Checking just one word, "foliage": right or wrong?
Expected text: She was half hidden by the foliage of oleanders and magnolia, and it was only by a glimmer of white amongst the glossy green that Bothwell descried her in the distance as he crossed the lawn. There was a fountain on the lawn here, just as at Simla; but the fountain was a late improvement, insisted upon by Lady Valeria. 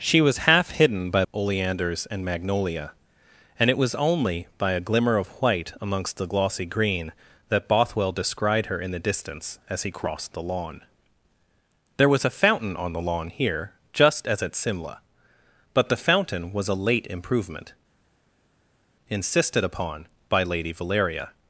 wrong